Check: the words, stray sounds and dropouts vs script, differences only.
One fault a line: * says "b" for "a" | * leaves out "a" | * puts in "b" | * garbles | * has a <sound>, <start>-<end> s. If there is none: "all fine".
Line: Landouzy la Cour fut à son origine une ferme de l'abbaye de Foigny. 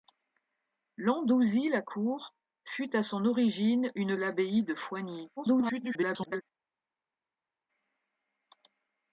* leaves out "ferme de"
* garbles